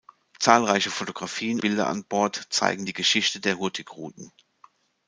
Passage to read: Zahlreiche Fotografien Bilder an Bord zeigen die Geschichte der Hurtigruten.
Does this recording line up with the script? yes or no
yes